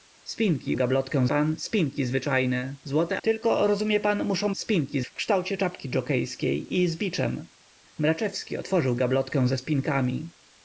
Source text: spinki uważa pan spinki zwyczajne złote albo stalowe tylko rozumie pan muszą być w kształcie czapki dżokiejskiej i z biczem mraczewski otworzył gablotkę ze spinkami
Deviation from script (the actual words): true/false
true